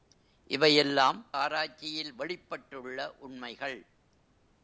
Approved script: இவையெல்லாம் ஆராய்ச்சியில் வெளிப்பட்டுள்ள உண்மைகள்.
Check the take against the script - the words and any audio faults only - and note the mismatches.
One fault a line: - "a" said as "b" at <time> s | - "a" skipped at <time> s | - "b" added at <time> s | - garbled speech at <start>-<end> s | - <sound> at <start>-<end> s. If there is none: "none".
none